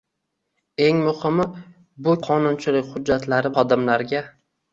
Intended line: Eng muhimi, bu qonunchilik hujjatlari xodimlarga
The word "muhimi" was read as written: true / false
true